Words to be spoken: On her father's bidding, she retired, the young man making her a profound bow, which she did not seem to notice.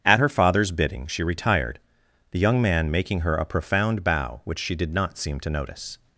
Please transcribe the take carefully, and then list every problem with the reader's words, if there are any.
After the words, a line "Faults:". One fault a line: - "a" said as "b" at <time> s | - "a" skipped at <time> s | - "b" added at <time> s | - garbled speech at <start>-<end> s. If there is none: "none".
At her father's bidding, she retired, the young man making her a profound bow, which she did not seem to notice.
Faults:
- "On" said as "At" at 0.0 s